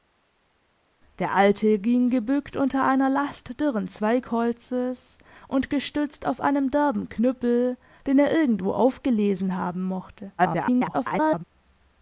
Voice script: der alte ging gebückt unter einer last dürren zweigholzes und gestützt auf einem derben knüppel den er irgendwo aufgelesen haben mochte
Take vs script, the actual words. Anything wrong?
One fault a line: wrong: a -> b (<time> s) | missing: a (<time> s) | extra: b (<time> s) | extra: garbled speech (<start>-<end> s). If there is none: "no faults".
extra: garbled speech (10.4-11.4 s)